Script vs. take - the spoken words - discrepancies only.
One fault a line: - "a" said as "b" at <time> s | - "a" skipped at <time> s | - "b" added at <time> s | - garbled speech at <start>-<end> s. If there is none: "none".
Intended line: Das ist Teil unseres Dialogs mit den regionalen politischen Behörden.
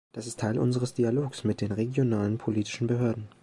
none